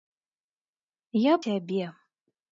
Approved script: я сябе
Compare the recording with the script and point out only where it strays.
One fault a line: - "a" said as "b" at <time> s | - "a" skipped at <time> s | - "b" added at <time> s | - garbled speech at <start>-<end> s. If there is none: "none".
none